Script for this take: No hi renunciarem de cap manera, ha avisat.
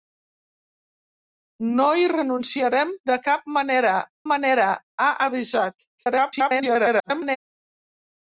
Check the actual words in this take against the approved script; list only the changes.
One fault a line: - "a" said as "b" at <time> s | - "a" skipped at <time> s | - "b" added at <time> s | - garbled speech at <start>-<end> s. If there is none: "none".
- "manera" added at 4.3 s
- garbled speech at 5.9-7.4 s